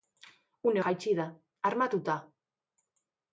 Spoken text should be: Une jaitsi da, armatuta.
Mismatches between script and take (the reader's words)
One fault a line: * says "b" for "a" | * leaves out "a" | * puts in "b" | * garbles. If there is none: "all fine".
all fine